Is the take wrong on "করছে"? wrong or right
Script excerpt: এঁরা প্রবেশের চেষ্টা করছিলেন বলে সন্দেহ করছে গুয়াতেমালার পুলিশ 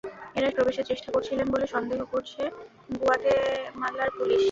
right